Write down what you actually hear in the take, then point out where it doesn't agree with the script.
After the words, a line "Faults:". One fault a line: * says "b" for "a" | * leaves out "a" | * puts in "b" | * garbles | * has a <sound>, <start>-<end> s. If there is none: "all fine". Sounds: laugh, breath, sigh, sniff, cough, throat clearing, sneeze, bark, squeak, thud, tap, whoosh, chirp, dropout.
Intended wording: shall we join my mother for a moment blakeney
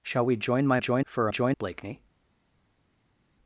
shall we join my join for a join blakeney
Faults:
* says "join" for "mother"
* says "join" for "moment"